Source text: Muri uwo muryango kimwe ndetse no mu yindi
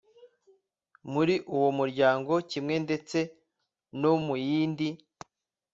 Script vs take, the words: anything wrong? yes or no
no